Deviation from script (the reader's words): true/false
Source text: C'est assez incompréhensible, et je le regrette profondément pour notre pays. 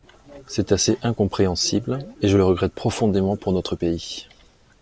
false